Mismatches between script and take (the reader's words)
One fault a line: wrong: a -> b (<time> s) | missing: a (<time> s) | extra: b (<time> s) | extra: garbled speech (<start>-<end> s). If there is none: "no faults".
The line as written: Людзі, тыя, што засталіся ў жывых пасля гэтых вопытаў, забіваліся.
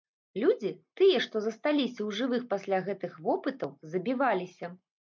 no faults